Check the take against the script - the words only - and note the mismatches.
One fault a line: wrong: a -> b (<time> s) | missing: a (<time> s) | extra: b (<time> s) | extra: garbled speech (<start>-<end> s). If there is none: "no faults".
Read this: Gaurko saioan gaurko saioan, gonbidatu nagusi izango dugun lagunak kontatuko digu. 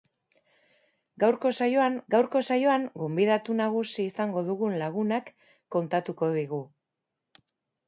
no faults